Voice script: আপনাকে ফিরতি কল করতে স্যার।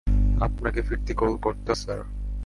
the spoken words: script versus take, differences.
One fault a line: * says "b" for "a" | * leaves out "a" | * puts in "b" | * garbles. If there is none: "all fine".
all fine